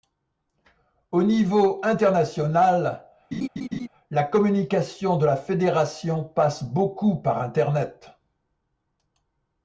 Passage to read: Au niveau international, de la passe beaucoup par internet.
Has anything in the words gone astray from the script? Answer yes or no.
yes